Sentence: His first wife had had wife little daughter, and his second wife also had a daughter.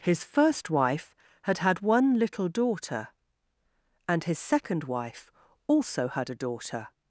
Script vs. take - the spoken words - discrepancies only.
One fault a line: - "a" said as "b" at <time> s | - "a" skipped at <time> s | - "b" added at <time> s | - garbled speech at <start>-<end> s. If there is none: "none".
- "wife" said as "one" at 1.8 s